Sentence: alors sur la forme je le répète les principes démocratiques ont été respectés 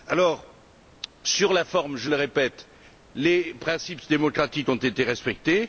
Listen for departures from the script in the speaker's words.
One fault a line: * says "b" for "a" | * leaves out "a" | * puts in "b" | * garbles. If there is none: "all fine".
all fine